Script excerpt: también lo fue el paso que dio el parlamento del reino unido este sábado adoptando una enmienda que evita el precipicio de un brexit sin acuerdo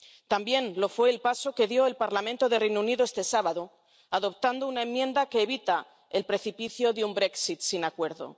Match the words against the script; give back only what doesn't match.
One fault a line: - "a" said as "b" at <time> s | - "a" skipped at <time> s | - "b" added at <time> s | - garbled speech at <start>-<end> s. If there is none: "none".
none